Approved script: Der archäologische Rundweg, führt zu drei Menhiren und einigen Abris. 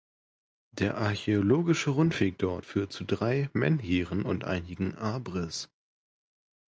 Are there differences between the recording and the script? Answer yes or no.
yes